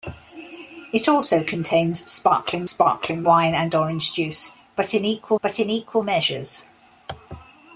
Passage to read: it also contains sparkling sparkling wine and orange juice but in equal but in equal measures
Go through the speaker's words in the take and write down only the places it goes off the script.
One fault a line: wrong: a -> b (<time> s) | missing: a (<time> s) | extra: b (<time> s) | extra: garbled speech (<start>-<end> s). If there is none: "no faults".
no faults